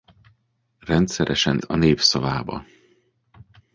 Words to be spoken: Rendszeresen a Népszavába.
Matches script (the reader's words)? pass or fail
pass